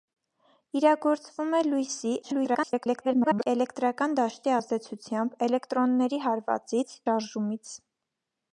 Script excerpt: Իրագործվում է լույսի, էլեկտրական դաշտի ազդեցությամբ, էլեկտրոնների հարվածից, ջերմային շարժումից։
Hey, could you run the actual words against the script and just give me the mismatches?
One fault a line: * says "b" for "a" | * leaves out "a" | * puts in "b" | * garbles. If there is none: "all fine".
* garbles
* leaves out "ջերմային"